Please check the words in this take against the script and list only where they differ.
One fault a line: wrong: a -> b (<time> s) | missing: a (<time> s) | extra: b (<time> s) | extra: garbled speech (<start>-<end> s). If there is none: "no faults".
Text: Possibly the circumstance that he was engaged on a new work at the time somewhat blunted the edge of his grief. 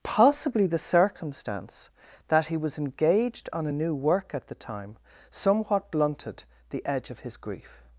no faults